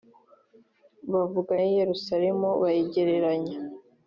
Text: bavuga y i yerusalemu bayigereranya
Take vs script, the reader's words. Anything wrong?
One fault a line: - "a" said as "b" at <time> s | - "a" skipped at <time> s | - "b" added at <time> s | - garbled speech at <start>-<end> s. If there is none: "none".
none